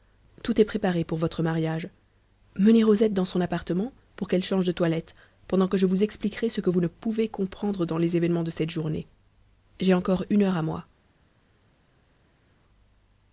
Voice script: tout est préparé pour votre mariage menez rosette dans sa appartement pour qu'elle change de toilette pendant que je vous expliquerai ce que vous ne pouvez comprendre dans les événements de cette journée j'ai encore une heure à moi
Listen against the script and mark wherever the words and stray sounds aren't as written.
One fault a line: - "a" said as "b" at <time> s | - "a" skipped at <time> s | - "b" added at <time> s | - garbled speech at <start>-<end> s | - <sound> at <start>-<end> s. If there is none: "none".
- "sa" said as "son" at 3.2 s